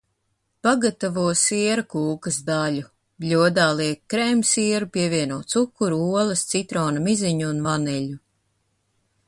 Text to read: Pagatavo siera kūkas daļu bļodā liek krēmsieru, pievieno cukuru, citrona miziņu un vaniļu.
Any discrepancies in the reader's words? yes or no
yes